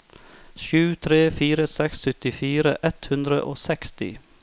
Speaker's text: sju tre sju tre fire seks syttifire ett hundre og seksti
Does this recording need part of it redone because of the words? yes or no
yes